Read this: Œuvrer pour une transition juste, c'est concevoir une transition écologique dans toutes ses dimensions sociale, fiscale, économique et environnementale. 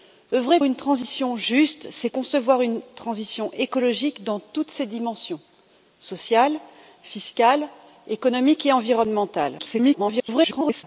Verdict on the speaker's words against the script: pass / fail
fail